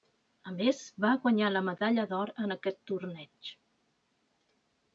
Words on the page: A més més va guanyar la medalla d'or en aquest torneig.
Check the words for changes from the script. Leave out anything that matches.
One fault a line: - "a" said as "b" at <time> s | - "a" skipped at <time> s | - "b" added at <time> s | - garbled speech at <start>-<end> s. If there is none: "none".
- "més" skipped at 0.8 s